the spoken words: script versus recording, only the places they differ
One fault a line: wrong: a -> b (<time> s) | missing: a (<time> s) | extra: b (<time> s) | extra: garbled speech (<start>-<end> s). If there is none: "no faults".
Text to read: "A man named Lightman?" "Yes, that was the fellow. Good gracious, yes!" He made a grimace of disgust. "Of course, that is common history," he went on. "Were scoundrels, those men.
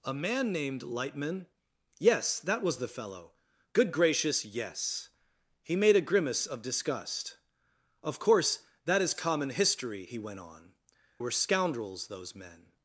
no faults